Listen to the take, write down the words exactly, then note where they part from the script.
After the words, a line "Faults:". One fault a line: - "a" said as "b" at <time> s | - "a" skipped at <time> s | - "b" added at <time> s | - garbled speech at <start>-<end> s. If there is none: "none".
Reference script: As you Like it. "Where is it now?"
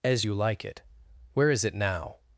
As you Like it. "Where is it now?"
Faults:
none